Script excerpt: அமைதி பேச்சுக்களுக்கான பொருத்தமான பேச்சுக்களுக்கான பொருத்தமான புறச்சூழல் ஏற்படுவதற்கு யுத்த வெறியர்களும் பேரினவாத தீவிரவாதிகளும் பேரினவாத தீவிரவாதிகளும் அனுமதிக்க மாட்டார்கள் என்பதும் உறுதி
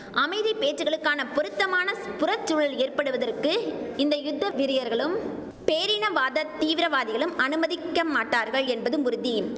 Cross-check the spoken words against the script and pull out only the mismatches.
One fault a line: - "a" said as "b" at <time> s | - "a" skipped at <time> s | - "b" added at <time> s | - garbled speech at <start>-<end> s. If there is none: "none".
- "பேச்சுக்களுக்கான பொருத்தமான" skipped at 1.9 s
- "இந்த" added at 4.0 s
- "பேரினவாத தீவிரவாதிகளும்" skipped at 7.3 s